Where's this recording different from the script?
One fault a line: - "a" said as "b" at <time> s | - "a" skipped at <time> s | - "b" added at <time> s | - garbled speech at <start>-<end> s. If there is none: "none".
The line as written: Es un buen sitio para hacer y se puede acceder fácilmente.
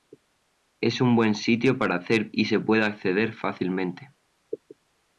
none